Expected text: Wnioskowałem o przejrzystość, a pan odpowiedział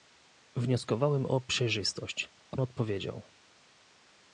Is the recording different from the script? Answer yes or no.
yes